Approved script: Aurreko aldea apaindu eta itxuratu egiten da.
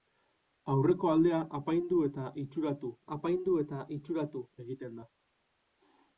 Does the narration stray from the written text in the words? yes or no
yes